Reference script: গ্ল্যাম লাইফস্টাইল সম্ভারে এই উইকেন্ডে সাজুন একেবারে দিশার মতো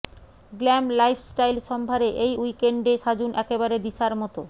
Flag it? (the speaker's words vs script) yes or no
no